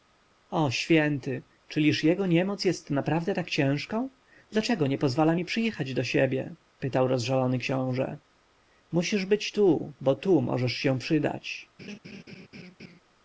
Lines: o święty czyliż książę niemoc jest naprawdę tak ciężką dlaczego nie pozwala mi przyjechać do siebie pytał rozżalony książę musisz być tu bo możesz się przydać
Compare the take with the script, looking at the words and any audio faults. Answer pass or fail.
fail